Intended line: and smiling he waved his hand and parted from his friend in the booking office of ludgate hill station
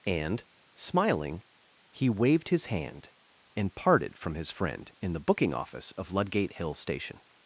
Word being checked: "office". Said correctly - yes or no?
yes